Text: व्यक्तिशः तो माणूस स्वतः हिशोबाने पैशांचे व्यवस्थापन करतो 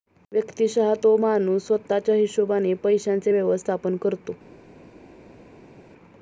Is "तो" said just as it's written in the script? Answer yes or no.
yes